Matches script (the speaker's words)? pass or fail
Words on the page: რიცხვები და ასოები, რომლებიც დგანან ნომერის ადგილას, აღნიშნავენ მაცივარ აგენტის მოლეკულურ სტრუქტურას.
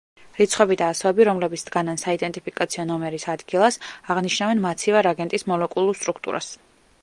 fail